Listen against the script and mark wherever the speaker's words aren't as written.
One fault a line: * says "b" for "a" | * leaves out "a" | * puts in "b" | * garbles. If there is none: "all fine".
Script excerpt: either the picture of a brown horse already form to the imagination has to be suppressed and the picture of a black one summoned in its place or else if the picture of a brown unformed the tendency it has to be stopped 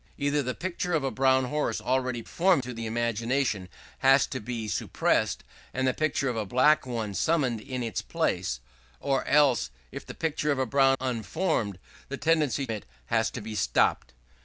all fine